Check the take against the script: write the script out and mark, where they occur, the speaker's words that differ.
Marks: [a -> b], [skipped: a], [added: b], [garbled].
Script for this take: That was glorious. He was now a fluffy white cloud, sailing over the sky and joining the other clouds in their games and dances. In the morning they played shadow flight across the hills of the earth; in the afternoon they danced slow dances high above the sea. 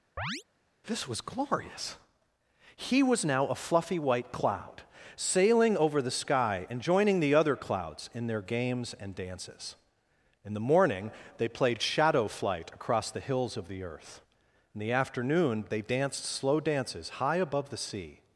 [That -> This] was glorious. He was now a fluffy white cloud, sailing over the sky and joining the other clouds in their games and dances. In the morning they played shadow flight across the hills of the earth; in the afternoon they danced slow dances high above the sea.